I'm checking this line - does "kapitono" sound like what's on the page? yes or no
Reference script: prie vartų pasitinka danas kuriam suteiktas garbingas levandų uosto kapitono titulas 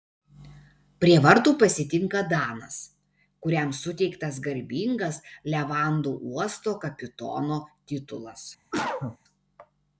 yes